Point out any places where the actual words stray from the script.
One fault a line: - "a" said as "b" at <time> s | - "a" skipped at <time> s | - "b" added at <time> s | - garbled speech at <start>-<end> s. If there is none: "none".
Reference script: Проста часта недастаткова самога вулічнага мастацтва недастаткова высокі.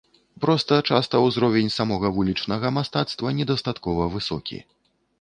- "недастаткова" said as "ўзровень" at 1.2 s